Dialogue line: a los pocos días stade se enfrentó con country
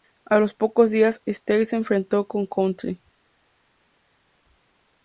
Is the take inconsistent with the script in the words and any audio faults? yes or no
no